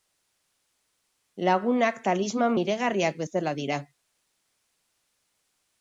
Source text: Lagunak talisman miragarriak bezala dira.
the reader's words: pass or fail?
pass